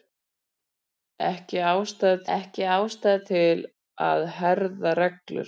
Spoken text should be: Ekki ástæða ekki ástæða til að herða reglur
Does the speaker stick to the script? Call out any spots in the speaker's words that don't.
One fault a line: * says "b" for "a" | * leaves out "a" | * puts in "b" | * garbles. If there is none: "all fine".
all fine